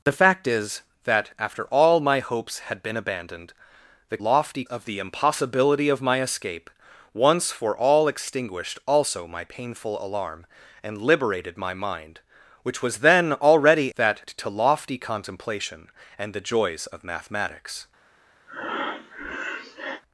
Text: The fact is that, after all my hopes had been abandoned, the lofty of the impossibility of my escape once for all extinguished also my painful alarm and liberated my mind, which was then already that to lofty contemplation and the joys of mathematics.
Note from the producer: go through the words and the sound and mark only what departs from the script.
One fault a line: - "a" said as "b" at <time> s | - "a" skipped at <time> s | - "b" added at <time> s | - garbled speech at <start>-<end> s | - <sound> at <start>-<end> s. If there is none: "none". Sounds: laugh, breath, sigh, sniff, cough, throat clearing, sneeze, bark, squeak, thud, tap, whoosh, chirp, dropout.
- breath at 18.5-20.0 s